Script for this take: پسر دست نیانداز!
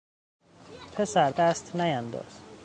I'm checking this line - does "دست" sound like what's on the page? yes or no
yes